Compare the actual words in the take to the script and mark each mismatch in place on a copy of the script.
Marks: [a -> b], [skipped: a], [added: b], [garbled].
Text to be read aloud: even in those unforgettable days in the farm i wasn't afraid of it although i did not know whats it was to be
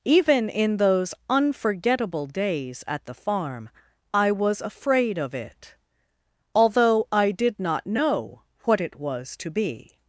even in those unforgettable days [in -> at] the farm i [wasn't -> was] afraid of it although i did not know [whats -> what] it was to be